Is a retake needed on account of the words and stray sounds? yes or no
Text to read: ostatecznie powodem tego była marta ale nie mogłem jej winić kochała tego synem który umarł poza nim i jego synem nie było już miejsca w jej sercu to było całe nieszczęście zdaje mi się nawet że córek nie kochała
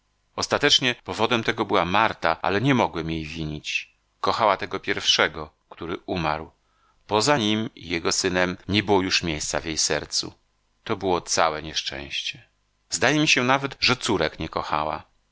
yes